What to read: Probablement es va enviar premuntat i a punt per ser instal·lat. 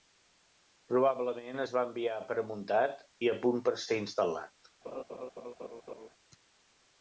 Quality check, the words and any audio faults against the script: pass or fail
fail